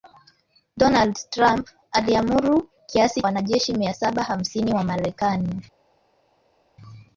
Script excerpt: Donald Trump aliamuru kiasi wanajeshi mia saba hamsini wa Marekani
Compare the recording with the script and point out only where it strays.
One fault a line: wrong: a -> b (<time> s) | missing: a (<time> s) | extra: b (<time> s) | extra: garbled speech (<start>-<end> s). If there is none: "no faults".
no faults